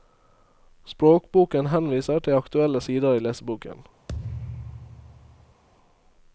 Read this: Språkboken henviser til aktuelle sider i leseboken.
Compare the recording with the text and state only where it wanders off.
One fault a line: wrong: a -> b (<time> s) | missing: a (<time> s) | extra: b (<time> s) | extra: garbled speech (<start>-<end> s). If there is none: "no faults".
no faults